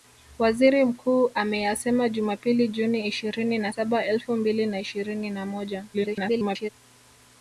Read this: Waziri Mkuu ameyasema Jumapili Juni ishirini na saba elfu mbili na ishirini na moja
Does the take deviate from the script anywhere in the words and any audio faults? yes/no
yes